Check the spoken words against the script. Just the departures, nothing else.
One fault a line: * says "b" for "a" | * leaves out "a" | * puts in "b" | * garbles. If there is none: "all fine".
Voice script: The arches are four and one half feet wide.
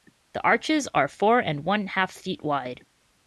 all fine